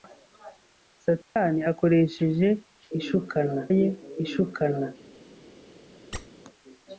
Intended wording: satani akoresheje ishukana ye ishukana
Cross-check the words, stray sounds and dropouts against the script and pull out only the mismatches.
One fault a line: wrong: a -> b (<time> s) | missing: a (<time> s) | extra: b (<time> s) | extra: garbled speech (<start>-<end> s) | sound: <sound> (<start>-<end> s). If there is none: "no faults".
sound: dropout (1.2-1.4 s)
sound: squeak (6.1-6.3 s)